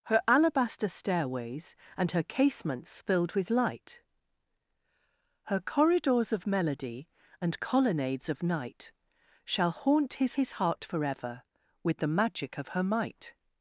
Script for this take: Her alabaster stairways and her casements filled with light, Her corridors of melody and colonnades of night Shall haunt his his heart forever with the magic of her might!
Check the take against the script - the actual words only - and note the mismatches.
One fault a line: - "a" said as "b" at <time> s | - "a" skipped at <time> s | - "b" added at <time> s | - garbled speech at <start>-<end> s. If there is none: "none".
none